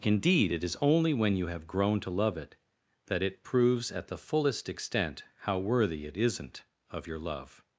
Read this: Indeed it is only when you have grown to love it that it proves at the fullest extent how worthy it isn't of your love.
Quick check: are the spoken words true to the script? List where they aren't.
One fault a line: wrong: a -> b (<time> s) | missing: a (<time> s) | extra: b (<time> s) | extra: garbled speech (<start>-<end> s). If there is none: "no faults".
no faults